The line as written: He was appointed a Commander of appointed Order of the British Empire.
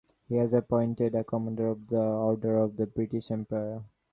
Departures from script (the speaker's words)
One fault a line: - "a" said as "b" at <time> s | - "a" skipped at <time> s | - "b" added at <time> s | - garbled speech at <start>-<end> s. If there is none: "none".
- "appointed" said as "the" at 1.9 s